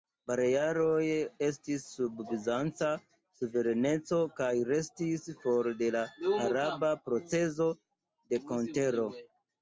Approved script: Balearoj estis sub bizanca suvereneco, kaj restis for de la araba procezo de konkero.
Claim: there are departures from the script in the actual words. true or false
false